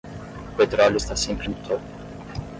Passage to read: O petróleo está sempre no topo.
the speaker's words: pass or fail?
pass